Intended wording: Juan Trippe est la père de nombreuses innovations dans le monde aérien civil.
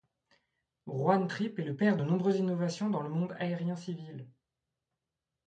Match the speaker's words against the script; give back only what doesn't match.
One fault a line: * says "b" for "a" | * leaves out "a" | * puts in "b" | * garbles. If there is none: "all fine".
* says "le" for "la"